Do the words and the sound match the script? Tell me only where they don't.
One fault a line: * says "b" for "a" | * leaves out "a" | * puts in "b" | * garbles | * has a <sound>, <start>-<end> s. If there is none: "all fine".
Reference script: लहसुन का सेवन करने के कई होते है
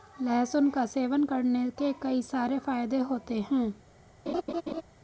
* puts in "सारे फायदे"
* has a laugh, 4.3-4.8 s